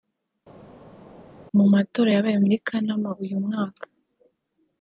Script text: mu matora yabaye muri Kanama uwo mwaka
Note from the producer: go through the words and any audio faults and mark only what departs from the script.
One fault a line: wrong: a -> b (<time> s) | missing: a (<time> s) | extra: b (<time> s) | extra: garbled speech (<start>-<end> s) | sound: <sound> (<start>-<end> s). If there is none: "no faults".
wrong: uwo -> uyu (3.2 s)